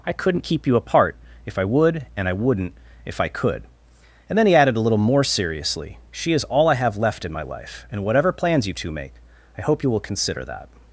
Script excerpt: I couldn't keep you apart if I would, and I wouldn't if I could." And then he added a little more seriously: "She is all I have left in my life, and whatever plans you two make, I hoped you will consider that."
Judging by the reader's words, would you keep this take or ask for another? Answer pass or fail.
fail